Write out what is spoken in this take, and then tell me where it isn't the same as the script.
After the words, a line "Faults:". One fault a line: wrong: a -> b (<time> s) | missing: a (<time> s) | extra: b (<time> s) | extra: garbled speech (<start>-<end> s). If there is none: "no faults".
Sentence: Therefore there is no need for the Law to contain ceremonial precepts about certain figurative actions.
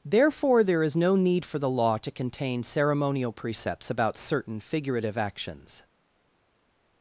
Therefore there is no need for the Law to contain ceremonial precepts about certain figurative actions.
Faults:
no faults